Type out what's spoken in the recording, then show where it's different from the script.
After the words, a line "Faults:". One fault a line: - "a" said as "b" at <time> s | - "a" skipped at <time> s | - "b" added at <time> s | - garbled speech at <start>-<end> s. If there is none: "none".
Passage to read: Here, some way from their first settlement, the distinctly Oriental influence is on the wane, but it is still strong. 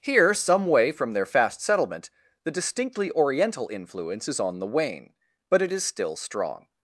Here, some way from their fast settlement, the distinctly Oriental influence is on the wane, but it is still strong.
Faults:
- "first" said as "fast" at 1.3 s